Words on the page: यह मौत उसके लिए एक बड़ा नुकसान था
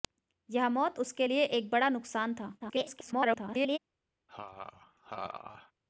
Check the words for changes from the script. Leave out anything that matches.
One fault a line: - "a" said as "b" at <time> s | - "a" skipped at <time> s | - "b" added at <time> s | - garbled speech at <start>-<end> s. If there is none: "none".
- garbled speech at 2.6-3.8 s